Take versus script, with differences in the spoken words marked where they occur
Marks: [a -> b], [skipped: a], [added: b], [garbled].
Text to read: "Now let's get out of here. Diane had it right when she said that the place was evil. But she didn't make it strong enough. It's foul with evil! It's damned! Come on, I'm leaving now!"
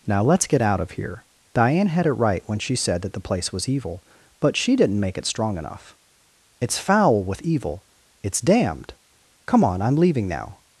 "Now let's get out of here. Diane had it right when she said that the place was evil. But she didn't make it strong enough. It's foul with evil! It's damned! Come on, I'm leaving now!"